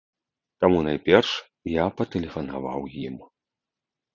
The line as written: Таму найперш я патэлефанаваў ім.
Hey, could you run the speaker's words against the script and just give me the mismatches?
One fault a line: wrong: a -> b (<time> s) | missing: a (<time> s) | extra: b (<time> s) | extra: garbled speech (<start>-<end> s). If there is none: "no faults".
no faults